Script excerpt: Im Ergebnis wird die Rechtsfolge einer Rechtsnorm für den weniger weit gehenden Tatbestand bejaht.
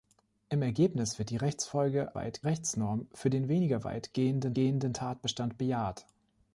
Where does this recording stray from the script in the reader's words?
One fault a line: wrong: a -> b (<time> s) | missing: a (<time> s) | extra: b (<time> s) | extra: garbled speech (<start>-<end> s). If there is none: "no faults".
wrong: einer -> weit (2.1 s)
extra: gehenden (4.5 s)